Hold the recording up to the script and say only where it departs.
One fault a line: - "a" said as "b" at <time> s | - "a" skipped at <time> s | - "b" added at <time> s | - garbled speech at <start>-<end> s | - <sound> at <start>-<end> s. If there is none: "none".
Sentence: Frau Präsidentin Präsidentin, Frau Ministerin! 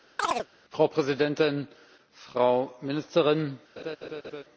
- chirp at 0.2-0.5 s
- "Präsidentin" skipped at 1.7 s
- laugh at 3.8-4.4 s